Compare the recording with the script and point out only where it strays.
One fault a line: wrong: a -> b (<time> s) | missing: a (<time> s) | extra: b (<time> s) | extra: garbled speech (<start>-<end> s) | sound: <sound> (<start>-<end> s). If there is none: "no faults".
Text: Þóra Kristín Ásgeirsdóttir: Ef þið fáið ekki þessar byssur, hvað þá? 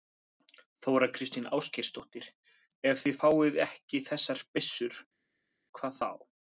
no faults